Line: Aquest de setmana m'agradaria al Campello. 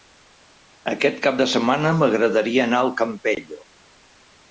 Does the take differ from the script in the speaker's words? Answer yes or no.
yes